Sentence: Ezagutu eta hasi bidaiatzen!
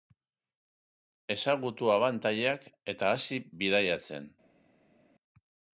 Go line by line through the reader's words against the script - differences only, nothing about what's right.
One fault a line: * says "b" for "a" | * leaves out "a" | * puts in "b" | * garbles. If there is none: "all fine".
* puts in "abantailak"